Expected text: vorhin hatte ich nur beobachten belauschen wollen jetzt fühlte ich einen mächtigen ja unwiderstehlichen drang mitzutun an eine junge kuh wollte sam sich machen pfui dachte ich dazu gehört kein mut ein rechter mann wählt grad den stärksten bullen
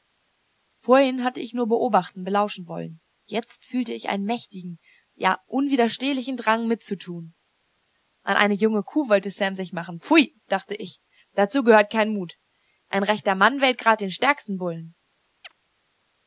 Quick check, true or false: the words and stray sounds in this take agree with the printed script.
false